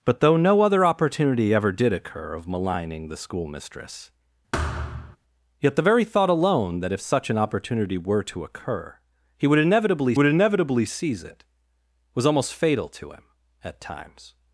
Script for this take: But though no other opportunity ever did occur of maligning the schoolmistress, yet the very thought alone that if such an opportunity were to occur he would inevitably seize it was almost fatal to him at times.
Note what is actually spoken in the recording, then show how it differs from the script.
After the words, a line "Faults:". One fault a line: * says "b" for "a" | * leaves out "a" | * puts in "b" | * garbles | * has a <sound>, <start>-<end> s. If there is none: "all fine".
But though no other opportunity ever did occur of maligning the schoolmistress, yet the very thought alone that if such an opportunity were to occur he would inevitably would inevitably seize it was almost fatal to him at times.
Faults:
* has a thud, 4.5-5.2 s
* puts in "would inevitably"